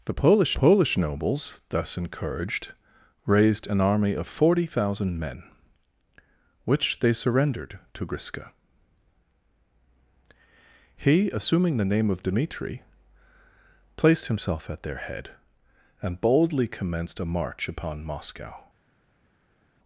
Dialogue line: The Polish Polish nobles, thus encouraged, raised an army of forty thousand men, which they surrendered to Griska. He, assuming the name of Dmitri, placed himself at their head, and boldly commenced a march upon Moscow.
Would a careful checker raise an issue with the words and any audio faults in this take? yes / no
no